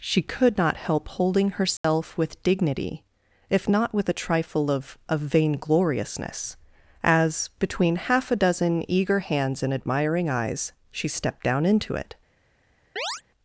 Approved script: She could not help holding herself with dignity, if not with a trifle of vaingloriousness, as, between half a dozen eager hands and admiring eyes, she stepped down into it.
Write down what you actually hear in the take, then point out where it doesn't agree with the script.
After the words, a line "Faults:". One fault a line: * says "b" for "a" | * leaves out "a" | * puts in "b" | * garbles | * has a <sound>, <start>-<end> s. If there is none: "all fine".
She could not help holding herself with dignity, if not with a trifle of of vaingloriousness, as, between half a dozen eager hands and admiring eyes, she stepped down into it.
Faults:
* has a dropout, 1.8-1.8 s
* puts in "of"
* has a chirp, 13.0-13.2 s